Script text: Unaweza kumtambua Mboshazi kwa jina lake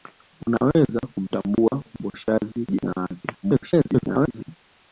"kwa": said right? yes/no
no